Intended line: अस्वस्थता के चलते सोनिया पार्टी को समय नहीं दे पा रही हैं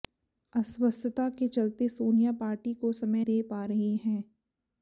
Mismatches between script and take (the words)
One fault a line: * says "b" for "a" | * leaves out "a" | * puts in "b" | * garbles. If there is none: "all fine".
* leaves out "नहीं"